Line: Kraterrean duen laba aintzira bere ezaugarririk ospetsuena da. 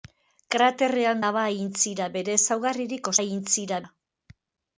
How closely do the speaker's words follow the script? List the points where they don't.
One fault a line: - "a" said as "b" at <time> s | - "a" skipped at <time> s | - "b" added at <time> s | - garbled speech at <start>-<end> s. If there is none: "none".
- "duen" skipped at 1.2 s
- "ospetsuena" said as "aintzira" at 3.2 s